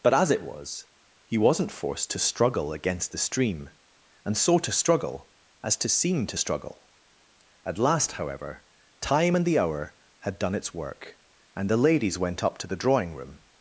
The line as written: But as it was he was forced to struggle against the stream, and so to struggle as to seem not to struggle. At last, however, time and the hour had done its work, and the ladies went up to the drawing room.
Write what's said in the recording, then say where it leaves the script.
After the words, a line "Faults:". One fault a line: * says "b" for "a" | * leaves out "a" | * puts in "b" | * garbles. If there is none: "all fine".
But as it was he wasn't forced to struggle against the stream, and so to struggle as to seem to struggle. At last, however, time and the hour had done its work, and the ladies went up to the drawing room.
Faults:
* says "wasn't" for "was"
* leaves out "not"